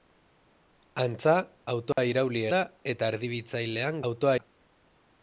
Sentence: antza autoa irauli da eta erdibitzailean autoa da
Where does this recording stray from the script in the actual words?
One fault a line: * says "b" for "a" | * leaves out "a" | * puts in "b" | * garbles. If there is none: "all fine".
all fine